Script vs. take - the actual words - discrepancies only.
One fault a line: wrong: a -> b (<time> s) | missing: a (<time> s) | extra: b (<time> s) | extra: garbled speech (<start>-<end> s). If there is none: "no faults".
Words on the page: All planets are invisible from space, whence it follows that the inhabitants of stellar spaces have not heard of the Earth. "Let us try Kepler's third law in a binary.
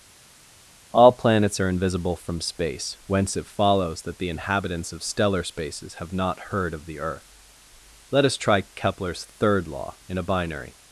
no faults